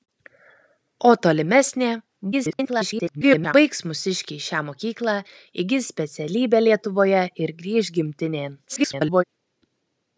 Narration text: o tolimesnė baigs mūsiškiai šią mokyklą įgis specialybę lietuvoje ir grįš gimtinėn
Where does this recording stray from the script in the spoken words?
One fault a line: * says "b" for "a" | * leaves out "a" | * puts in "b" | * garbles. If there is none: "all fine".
* garbles
* garbles